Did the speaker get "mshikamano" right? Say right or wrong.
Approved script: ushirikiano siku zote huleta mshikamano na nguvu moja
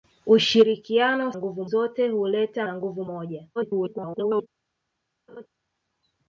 wrong